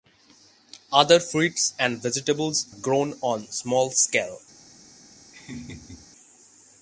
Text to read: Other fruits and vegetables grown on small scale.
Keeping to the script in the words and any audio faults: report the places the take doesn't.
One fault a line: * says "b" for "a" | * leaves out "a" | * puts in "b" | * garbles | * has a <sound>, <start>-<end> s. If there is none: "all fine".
* has a laugh, 5.3-6.1 s